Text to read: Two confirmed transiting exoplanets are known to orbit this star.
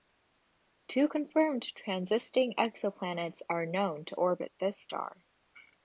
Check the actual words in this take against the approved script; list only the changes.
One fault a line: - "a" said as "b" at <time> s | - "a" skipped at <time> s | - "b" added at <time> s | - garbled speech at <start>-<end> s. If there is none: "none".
none